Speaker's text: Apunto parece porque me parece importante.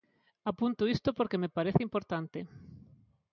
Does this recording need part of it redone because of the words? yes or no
yes